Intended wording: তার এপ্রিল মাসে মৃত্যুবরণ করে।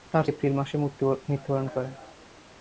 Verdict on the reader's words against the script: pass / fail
pass